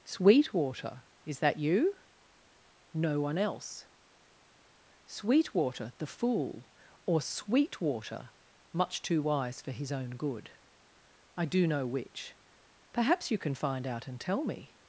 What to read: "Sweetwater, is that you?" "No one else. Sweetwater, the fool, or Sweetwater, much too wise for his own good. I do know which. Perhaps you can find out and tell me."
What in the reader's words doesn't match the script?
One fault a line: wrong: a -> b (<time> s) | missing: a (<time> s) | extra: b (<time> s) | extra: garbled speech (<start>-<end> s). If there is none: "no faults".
no faults